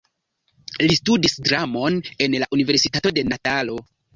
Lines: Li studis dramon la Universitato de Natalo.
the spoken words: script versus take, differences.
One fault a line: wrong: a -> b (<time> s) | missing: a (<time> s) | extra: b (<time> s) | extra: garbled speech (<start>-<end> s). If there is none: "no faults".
extra: en (2.3 s)